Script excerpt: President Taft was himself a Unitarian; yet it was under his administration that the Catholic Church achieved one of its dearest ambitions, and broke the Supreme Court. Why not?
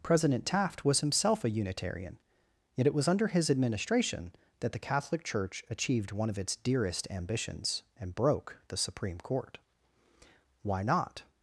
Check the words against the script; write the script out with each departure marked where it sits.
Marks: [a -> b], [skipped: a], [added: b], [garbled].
President Taft was himself a Unitarian; yet it was under his administration that the Catholic Church achieved one of its dearest ambitions, and broke the Supreme Court. Why not?